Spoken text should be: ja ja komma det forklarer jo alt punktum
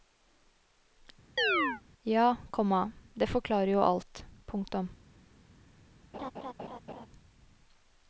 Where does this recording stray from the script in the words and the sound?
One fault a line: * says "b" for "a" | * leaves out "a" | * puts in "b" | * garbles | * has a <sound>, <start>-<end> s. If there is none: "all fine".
* has a chirp, 1.4-1.8 s
* leaves out "ja"
* has a laugh, 6.1-7.1 s